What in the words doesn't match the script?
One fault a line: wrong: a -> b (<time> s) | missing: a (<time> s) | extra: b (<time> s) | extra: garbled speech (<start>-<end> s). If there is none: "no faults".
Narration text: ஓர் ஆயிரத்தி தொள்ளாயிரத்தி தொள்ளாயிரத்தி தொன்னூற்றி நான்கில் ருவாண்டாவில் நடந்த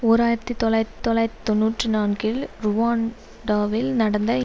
no faults